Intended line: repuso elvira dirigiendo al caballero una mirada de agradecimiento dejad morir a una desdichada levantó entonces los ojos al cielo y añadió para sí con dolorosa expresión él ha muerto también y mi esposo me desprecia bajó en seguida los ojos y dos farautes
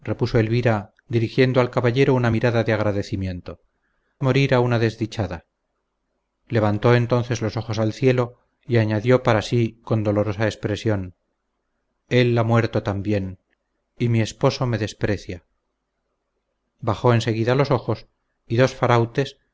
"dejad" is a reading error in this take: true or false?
true